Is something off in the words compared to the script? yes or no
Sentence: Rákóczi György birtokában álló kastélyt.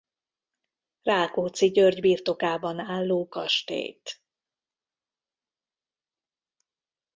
no